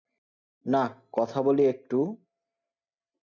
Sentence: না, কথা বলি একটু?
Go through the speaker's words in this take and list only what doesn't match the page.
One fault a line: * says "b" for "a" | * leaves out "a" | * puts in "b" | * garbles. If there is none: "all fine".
all fine